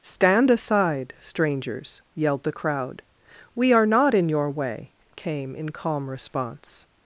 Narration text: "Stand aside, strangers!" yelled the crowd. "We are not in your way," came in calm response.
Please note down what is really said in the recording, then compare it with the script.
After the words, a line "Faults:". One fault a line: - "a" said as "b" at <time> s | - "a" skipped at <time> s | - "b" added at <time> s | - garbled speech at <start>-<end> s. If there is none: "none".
"Stand aside, strangers!" yelled the crowd. "We are not in your way," came in calm response.
Faults:
none